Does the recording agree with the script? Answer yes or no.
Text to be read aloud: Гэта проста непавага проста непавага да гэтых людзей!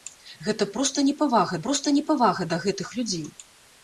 yes